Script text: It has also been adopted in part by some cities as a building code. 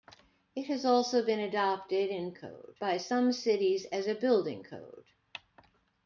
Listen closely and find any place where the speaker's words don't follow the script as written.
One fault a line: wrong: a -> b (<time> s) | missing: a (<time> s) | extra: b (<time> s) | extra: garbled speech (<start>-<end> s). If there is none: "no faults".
wrong: part -> code (2.3 s)